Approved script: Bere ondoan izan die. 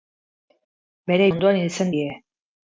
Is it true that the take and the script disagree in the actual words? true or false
false